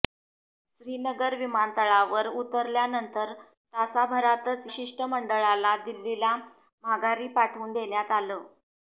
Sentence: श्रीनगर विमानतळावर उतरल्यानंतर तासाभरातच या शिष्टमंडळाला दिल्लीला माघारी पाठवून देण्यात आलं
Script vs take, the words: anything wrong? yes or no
yes